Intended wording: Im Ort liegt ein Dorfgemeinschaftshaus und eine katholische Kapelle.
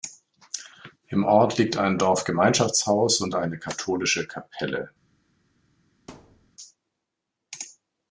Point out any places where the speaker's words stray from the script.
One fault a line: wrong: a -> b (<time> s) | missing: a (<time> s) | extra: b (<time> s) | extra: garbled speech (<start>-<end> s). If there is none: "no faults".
no faults